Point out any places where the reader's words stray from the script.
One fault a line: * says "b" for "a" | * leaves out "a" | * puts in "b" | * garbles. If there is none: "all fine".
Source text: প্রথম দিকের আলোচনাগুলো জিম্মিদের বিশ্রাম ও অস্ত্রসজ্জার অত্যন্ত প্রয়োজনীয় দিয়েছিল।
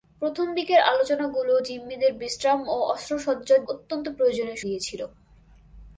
all fine